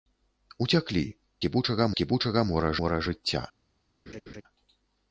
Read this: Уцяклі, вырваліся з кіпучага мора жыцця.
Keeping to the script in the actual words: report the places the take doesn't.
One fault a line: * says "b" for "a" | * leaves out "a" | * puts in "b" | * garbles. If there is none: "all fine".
* says "кіпучага" for "вырваліся"
* puts in "мора"